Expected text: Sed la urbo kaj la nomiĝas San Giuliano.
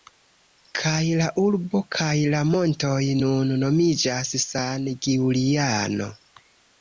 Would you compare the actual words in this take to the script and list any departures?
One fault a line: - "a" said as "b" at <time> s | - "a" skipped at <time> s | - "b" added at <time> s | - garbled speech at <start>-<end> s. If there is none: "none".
- "Sed" said as "Kaj" at 0.8 s
- "montoj nun" added at 2.5 s